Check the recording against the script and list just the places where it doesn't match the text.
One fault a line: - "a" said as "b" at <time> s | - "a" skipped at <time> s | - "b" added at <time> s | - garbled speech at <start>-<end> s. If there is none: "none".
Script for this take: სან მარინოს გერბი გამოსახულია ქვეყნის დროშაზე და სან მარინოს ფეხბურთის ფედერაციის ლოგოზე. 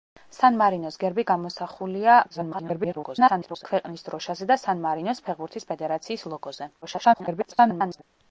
- garbled speech at 2.3-3.7 s
- garbled speech at 6.8-8.0 s